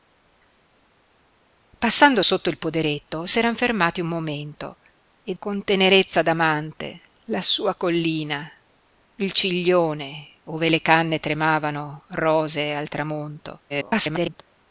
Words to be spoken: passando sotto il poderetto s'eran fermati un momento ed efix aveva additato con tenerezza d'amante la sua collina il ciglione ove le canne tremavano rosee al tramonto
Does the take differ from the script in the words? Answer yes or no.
yes